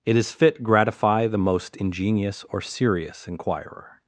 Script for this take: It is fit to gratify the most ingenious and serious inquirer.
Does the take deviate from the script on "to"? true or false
true